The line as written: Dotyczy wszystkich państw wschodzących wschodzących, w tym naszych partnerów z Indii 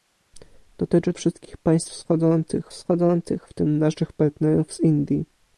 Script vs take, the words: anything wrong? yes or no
no